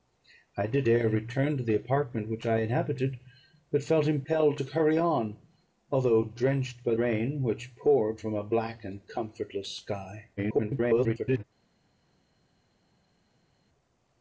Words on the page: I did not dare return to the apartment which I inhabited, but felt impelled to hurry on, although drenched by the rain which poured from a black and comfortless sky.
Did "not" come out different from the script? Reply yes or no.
yes